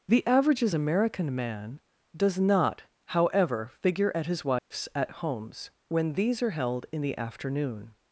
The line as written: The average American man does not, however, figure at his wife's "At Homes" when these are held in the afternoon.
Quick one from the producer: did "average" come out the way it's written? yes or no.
no